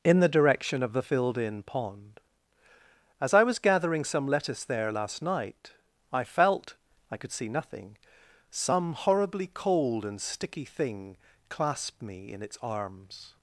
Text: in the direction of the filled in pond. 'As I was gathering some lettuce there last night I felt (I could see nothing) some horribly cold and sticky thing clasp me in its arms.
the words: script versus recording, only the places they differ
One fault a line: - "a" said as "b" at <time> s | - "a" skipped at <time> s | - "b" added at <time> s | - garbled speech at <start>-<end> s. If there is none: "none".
none